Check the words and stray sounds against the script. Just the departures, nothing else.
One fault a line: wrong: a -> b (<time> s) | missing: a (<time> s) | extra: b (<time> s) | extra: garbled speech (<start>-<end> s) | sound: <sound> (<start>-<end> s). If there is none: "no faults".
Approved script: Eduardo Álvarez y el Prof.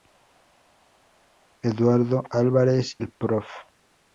missing: y (3.0 s)